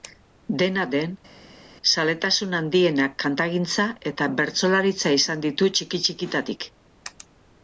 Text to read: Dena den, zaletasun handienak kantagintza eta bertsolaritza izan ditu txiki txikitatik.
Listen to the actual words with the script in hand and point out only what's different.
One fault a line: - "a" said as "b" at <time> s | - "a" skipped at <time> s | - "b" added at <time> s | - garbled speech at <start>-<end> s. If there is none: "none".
none